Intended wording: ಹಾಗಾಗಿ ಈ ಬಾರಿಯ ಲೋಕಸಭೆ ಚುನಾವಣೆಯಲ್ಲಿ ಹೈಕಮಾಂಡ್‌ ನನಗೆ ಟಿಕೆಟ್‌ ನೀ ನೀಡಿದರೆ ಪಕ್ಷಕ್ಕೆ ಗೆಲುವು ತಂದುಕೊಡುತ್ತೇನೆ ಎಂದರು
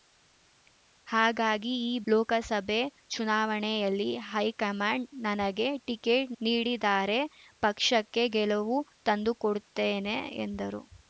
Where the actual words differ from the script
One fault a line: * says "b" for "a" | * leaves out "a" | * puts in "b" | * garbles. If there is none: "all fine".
* leaves out "ಬಾರಿಯ"
* leaves out "ನೀ"